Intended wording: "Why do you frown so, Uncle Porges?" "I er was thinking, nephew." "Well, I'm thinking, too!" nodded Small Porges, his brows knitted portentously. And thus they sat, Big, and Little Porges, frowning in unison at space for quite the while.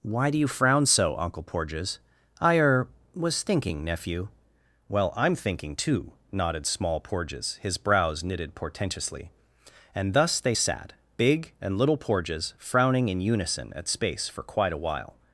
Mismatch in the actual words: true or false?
true